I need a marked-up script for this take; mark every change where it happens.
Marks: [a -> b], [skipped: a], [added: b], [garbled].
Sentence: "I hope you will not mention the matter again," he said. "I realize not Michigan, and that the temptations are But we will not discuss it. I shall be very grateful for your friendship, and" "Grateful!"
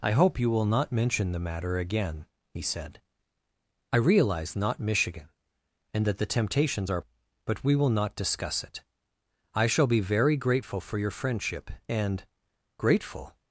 "I hope you will not mention the matter again," he said. "I realize not Michigan, and that the temptations are But we will not discuss it. I shall be very grateful for your friendship, and" "Grateful!"